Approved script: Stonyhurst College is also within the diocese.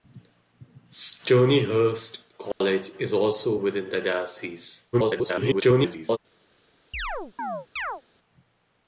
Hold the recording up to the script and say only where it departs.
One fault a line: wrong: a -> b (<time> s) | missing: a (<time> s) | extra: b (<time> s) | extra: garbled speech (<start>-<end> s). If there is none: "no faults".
extra: garbled speech (4.9-6.2 s)